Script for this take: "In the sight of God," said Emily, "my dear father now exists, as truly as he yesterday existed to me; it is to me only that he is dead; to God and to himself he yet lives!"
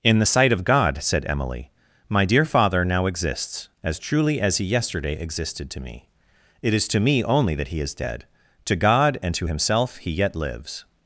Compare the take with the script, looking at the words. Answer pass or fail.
pass